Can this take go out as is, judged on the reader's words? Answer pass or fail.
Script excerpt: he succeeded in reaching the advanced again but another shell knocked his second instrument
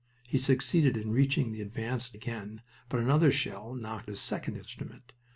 pass